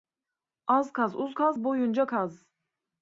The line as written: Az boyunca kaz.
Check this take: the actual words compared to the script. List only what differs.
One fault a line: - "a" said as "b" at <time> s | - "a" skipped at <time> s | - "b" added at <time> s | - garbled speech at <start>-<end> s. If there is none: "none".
- "kaz uz kaz" added at 0.9 s